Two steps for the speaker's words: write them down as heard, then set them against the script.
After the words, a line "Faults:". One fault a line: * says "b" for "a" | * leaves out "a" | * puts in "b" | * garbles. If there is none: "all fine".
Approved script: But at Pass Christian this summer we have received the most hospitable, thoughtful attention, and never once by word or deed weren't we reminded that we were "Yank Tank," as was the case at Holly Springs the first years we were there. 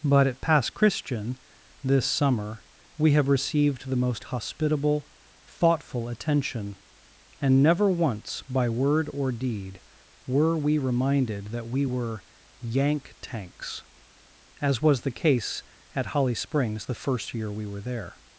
But at Pass Christian this summer we have received the most hospitable, thoughtful attention, and never once by word or deed were we reminded that we were "Yank Tanks," as was the case at Holly Springs the first year we were there.
Faults:
* says "were" for "weren't"
* says "Tanks" for "Tank"
* says "year" for "years"